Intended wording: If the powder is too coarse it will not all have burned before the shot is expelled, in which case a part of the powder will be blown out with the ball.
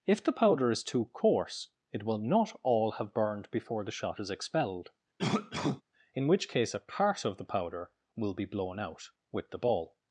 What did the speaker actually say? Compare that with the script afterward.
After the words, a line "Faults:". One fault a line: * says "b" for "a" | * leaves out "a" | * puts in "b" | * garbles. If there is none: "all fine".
If the powder is too coarse it will not all have burned before the shot is expelled, in which case a part of the powder will be blown out with the ball.
Faults:
all fine